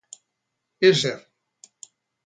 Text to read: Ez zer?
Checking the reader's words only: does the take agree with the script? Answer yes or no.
yes